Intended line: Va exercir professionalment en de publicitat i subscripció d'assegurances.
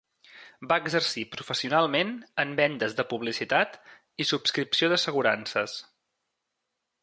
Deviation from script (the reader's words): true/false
true